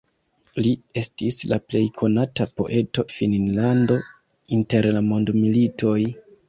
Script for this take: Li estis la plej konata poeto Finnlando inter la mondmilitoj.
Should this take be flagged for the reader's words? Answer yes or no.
no